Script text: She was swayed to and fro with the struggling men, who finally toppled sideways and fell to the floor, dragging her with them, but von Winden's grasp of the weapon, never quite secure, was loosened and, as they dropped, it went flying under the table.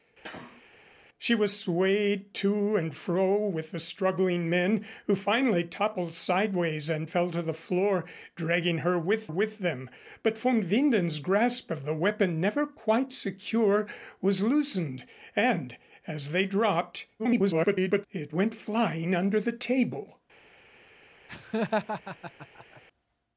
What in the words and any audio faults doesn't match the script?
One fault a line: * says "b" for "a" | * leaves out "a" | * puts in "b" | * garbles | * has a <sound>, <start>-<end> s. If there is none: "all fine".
* has a sneeze, 0.2-0.6 s
* puts in "with"
* garbles
* has a laugh, 21.3-22.8 s